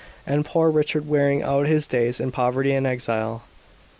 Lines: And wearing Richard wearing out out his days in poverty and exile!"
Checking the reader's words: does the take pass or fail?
fail